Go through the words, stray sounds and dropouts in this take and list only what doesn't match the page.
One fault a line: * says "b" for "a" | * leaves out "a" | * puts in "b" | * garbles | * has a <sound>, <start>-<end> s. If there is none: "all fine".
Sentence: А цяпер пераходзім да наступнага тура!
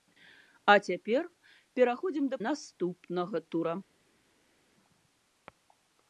all fine